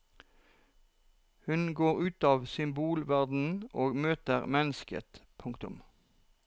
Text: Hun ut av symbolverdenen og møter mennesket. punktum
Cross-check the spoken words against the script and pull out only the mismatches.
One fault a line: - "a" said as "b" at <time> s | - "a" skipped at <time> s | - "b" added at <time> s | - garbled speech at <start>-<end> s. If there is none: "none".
- "går" added at 1.8 s